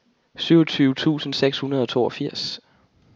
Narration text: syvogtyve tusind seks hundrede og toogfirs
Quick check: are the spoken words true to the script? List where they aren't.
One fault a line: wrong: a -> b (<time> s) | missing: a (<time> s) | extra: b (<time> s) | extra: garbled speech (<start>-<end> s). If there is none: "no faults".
no faults